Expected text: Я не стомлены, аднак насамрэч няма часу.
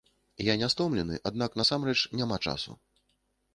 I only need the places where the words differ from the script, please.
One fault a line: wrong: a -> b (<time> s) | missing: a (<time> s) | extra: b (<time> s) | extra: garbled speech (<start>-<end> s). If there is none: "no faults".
no faults